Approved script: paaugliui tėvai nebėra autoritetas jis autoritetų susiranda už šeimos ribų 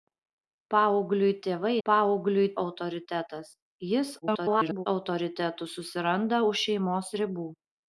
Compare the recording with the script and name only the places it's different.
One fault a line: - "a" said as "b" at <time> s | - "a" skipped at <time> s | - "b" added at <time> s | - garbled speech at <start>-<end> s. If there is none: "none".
- "nebėra" said as "paaugliui" at 1.9 s
- garbled speech at 4.2-4.9 s